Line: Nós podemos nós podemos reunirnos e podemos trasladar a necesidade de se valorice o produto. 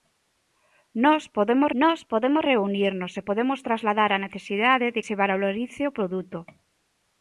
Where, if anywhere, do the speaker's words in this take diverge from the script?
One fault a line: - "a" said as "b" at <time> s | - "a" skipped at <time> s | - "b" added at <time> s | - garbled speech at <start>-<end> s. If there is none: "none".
none